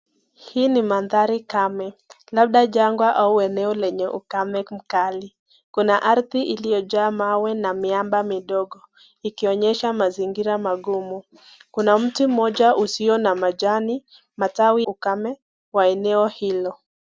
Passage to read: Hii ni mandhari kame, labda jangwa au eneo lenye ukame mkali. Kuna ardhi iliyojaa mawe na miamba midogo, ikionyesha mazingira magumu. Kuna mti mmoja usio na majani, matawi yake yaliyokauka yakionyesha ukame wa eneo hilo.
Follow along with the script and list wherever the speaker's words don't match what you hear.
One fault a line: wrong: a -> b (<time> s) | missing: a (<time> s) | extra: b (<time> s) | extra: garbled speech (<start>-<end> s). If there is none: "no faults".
missing: yake yaliyokauka yakionyesha (14.9 s)